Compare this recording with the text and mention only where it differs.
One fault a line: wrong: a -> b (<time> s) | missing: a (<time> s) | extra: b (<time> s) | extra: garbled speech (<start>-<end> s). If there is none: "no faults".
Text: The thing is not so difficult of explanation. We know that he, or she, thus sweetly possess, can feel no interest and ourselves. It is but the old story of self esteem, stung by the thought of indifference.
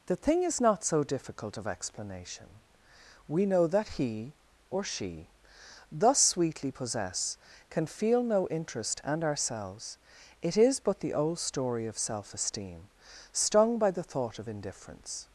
no faults